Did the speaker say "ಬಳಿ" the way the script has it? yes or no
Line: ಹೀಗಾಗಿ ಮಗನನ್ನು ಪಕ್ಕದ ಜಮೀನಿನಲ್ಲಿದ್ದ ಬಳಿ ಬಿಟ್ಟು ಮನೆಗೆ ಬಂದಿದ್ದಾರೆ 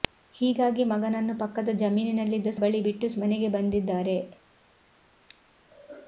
yes